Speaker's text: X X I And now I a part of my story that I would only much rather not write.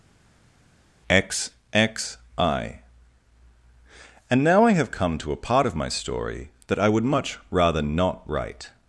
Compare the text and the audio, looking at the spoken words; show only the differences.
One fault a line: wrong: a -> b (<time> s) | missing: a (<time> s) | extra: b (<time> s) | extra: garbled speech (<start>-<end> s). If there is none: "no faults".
extra: have come to (4.7 s)
missing: only (7.0 s)